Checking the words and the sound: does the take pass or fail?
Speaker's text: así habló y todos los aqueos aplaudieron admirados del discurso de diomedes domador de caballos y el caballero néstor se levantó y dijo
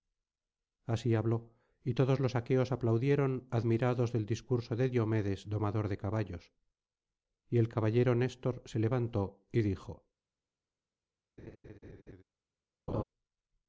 fail